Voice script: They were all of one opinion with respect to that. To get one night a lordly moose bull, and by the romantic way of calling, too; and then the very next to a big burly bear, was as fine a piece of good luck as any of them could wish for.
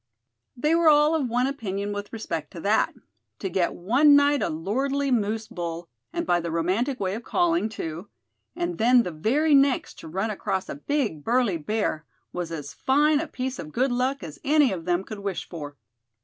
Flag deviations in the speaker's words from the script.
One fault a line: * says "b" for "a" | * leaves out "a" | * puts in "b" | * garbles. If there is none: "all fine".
* puts in "run across"